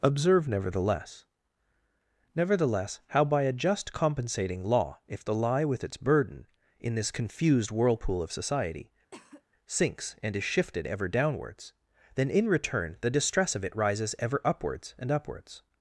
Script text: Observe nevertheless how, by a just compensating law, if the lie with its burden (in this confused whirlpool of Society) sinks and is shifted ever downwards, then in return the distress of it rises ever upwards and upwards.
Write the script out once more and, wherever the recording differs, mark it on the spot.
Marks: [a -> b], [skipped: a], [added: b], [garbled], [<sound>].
Observe nevertheless [added: nevertheless] how, by a just compensating law, if the lie with its burden (in this confused whirlpool of Society) [cough] sinks and is shifted ever downwards, then in return the distress of it rises ever upwards and upwards.